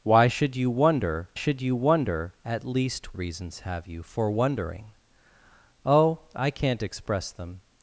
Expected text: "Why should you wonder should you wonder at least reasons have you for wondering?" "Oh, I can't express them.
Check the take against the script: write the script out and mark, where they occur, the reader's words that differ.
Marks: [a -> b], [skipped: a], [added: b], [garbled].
"Why should you wonder should you wonder at least reasons have you for wondering?" "Oh, I can't express them.